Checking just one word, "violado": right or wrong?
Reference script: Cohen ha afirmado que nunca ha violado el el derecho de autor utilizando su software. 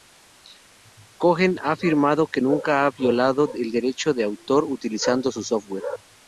right